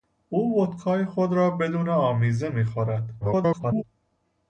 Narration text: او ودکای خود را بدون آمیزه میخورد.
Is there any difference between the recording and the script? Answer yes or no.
yes